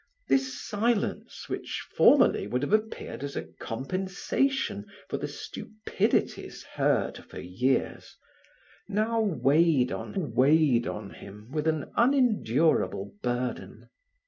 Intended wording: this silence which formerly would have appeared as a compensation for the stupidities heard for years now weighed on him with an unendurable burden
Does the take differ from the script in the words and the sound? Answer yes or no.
yes